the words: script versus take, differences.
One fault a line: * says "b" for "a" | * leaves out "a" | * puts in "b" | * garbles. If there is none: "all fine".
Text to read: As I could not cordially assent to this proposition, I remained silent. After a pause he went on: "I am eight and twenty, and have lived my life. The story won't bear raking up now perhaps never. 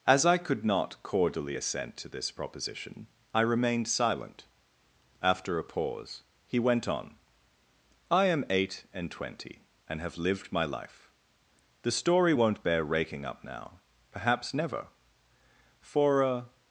* puts in "For a"